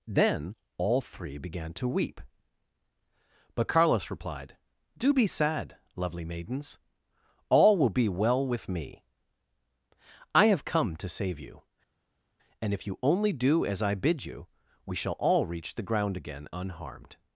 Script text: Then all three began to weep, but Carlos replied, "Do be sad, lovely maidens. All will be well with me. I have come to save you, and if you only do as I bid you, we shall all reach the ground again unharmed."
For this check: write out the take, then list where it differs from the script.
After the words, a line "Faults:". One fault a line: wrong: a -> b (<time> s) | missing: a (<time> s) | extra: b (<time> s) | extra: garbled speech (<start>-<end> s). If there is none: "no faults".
Then all three began to weep, but Carlos replied, "Do be sad, lovely maidens. All will be well with me. I have come to save you, and if you only do as I bid you, we shall all reach the ground again unharmed."
Faults:
no faults